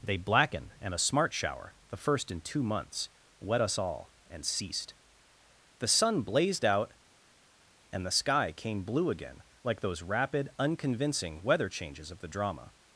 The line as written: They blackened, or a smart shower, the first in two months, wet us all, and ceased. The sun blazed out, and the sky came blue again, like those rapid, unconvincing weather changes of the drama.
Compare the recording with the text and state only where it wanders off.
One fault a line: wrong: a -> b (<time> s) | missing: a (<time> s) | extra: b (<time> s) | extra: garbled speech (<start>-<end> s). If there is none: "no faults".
wrong: or -> and (0.8 s)